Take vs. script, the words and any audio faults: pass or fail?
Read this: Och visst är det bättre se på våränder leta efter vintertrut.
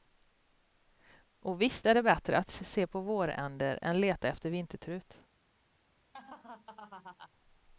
fail